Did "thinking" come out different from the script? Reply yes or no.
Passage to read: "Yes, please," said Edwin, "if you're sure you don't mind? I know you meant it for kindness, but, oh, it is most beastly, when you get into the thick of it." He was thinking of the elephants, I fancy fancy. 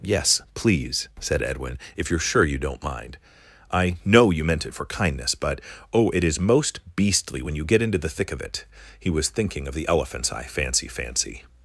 no